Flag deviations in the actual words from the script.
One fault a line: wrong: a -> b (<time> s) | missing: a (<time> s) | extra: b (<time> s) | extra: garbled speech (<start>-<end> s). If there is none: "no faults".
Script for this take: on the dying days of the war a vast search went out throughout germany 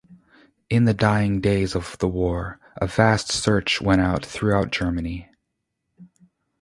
wrong: on -> in (0.7 s)